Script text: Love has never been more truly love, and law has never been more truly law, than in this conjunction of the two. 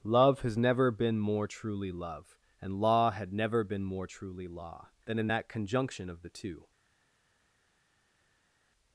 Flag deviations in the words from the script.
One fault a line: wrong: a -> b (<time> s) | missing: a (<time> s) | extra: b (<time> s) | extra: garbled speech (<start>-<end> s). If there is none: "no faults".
wrong: has -> had (3.1 s)
wrong: this -> that (5.3 s)